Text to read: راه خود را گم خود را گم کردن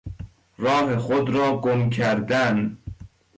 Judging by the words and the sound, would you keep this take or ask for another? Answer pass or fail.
fail